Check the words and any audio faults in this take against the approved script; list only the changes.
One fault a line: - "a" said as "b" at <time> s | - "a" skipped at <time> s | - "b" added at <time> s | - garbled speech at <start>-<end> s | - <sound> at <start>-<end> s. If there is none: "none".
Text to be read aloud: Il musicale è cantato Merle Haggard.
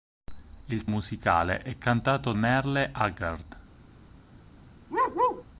- bark at 4.9-5.4 s